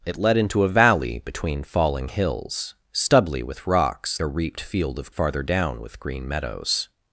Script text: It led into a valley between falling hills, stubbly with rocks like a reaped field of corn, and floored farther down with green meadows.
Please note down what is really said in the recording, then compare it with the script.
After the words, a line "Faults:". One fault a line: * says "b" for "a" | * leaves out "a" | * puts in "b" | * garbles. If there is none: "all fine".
It led into a valley between falling hills, stubbly with rocks a reaped field of farther down with green meadows.
Faults:
* leaves out "like"
* leaves out "corn and floored"